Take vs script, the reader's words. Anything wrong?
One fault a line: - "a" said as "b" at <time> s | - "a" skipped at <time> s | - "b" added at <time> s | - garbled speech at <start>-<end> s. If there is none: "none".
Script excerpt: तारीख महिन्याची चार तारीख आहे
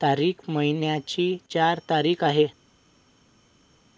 none